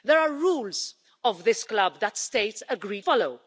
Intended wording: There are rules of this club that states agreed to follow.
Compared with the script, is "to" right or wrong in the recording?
wrong